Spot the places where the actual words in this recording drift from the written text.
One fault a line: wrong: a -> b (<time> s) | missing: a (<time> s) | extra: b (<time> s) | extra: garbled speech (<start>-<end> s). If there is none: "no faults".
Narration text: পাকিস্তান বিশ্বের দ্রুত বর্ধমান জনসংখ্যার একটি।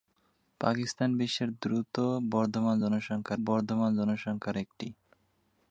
extra: বর্ধমান জনসংখ্যার (3.5 s)